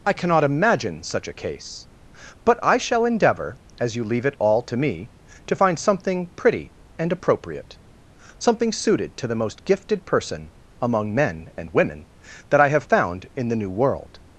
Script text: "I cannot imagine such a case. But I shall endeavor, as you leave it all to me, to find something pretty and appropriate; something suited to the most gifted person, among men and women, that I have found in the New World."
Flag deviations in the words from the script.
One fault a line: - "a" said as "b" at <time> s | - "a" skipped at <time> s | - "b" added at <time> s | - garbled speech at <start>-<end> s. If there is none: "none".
none